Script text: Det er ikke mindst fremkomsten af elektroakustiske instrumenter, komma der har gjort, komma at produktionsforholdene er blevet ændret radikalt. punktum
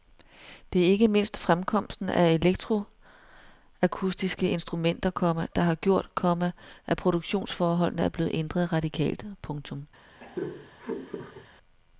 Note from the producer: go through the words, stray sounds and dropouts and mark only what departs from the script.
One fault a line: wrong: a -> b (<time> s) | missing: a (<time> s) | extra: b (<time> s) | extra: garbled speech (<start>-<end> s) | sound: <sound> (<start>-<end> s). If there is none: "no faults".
sound: laugh (10.2-11.5 s)